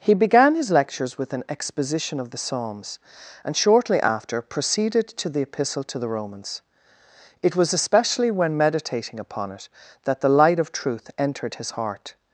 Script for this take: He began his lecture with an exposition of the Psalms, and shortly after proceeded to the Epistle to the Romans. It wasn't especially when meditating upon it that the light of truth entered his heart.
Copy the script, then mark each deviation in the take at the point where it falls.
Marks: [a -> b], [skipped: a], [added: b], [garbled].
He began his [lecture -> lectures] with an exposition of the Psalms, and shortly after proceeded to the Epistle to the Romans. It [wasn't -> was] especially when meditating upon it that the light of truth entered his heart.